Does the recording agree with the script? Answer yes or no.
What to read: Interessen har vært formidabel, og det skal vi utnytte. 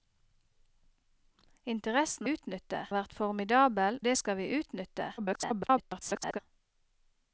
no